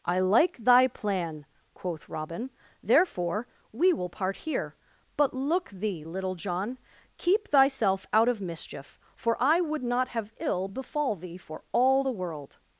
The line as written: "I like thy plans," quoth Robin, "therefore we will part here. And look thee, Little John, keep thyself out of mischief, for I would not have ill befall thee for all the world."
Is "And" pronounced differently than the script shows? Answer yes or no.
yes